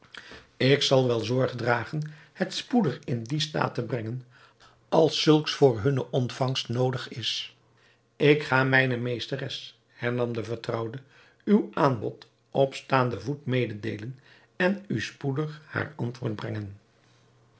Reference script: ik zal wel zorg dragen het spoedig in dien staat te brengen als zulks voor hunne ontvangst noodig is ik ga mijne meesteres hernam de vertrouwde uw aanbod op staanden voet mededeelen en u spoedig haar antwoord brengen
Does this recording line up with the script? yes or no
yes